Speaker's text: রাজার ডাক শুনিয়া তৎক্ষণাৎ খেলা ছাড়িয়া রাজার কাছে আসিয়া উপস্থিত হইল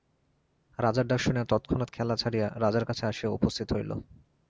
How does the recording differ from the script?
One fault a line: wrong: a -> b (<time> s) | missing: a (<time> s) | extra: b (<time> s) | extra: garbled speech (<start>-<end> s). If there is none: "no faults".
no faults